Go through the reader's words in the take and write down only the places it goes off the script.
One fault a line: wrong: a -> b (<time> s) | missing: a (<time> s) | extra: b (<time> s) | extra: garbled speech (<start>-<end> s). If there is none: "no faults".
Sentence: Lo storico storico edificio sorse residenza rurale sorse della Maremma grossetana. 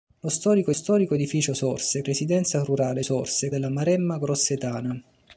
no faults